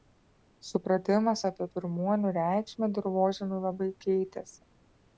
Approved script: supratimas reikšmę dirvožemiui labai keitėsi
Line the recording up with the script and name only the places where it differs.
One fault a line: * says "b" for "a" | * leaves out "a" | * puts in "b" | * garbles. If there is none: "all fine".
* puts in "apie pirmuonių"